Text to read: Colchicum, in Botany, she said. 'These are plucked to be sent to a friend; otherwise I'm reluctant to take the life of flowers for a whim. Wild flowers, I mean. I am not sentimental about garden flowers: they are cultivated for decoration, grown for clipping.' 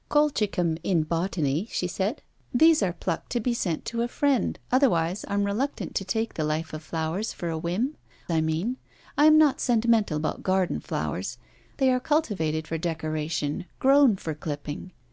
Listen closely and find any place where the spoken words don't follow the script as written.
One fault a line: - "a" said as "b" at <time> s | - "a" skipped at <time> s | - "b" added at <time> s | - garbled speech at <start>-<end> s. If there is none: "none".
- "Wild flowers" skipped at 8.0 s